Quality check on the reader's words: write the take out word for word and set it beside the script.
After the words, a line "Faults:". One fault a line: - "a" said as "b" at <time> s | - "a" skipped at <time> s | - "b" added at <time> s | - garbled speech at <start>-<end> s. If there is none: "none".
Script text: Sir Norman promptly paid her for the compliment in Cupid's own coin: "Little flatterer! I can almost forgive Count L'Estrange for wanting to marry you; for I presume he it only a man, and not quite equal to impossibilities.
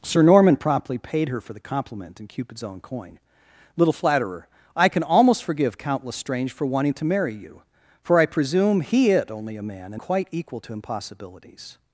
Sir Norman promptly paid her for the compliment in Cupid's own coin: "Little flatterer! I can almost forgive Count L'Estrange for wanting to marry you; for I presume he it only a man, and quite equal to impossibilities.
Faults:
- "not" skipped at 10.0 s